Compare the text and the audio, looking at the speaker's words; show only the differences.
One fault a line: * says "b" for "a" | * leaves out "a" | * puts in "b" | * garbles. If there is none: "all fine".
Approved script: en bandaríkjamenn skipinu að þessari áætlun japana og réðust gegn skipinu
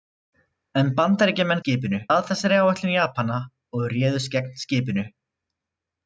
all fine